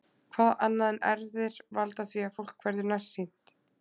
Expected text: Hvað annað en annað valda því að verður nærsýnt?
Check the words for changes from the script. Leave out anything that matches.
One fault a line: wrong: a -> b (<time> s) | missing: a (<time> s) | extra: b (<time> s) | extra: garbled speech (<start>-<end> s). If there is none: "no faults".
wrong: annað -> erfðir (1.1 s)
extra: fólk (2.4 s)